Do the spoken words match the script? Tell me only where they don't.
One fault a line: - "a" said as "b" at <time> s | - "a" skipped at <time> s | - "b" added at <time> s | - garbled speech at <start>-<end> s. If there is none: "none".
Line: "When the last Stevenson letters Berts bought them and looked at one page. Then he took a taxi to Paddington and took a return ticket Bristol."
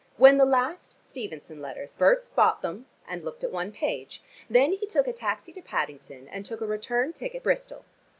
none